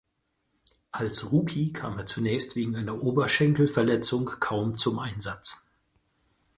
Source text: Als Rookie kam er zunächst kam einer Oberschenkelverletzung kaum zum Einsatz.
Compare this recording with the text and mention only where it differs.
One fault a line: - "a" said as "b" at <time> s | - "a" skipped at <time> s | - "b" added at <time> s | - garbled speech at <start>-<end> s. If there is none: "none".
- "kam" said as "wegen" at 2.5 s